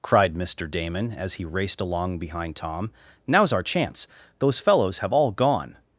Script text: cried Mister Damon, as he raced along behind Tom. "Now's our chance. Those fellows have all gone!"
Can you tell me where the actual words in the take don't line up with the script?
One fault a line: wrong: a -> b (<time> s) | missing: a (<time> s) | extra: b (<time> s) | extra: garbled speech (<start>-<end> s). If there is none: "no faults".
no faults